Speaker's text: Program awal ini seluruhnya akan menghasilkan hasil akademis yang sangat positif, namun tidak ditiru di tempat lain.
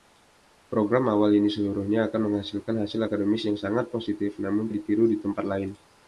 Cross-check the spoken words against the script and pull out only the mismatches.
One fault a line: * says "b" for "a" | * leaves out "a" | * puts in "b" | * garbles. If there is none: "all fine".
* leaves out "tidak"